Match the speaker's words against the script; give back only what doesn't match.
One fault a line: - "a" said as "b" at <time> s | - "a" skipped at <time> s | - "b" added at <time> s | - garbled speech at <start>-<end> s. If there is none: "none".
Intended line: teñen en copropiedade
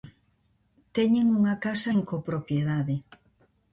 - "unha casa" added at 1.4 s